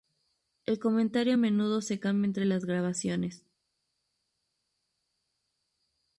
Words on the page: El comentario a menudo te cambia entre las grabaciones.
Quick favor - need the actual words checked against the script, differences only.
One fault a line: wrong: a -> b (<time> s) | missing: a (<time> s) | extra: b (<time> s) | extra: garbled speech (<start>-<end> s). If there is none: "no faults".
wrong: te -> se (1.8 s)